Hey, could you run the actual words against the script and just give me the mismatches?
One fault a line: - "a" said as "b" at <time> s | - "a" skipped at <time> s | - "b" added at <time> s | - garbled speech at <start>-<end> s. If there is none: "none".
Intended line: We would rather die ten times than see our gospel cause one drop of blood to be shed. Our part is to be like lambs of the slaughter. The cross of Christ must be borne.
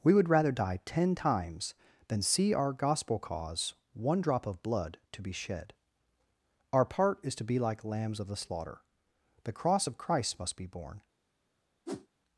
none